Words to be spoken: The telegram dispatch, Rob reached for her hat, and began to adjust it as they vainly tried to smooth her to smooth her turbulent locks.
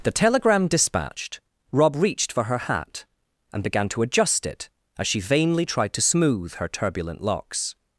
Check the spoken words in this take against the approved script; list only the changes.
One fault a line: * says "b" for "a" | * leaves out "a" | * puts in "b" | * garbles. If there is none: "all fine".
* says "dispatched" for "dispatch"
* says "she" for "they"
* leaves out "to smooth her"